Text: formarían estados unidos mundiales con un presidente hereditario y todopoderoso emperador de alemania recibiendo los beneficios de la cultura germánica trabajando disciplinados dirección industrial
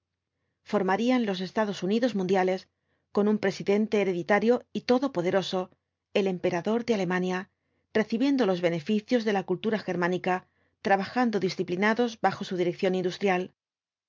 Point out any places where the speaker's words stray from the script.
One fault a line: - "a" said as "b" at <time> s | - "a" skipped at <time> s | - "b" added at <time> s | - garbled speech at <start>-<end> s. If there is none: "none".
- "los" added at 1.3 s
- "el" added at 6.1 s
- "bajo su" added at 12.2 s